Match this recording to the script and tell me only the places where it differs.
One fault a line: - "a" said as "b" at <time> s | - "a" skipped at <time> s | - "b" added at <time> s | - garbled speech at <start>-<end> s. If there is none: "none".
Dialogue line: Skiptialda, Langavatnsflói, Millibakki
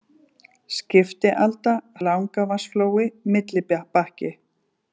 none